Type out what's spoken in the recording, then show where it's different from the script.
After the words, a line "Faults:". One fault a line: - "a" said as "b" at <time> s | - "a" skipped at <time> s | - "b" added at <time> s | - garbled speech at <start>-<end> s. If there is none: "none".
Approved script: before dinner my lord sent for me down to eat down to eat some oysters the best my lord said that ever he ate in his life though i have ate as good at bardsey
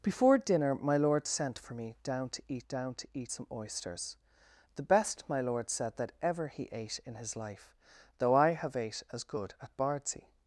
before dinner my lord sent for me down to eat down to eat some oysters the best my lord said that ever he ate in his life though i have ate as good at bardsey
Faults:
none